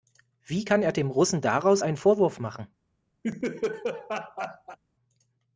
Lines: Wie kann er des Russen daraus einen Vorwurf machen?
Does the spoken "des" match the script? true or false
false